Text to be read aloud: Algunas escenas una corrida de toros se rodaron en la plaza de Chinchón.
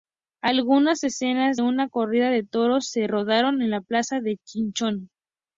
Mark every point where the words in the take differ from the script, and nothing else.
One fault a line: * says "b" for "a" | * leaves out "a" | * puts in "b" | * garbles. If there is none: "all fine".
all fine